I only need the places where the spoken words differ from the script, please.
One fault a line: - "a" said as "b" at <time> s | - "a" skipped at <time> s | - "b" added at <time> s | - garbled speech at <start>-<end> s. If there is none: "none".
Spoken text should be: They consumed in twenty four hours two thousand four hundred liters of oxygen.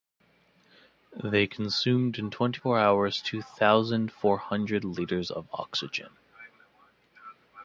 none